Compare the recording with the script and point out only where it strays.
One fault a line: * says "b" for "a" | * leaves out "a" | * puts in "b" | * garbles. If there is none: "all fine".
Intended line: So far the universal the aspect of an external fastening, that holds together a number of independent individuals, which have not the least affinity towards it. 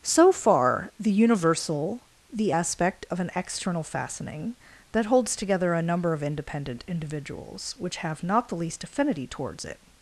all fine